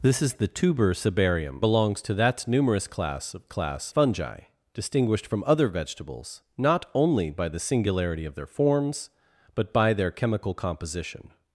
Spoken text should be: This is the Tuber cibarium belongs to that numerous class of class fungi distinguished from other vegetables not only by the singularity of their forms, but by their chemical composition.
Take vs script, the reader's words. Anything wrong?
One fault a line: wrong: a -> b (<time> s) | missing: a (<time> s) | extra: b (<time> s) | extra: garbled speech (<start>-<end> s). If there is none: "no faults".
no faults